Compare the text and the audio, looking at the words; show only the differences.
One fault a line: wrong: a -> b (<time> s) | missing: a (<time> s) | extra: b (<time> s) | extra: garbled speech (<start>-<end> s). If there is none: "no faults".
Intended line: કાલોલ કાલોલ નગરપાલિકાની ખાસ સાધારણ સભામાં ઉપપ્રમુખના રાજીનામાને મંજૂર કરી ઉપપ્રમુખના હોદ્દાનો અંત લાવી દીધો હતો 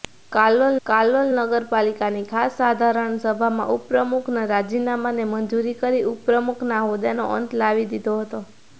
no faults